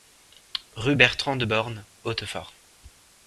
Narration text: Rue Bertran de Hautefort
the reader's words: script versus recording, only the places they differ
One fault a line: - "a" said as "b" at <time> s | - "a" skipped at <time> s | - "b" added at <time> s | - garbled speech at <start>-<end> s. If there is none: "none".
- "Born" added at 1.4 s